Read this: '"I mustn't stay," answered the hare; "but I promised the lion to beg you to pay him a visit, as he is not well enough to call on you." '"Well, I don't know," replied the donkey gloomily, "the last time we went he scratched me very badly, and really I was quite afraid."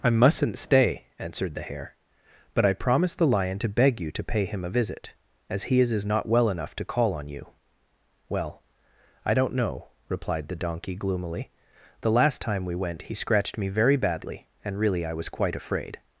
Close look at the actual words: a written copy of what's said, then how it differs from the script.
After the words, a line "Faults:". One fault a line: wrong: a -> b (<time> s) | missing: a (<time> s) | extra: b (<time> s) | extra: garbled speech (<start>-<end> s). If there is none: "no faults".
'"I mustn't stay," answered the hare; "but I promised the lion to beg you to pay him a visit, as he is is not well enough to call on you." '"Well, I don't know," replied the donkey gloomily, "the last time we went he scratched me very badly, and really I was quite afraid."
Faults:
extra: is (5.9 s)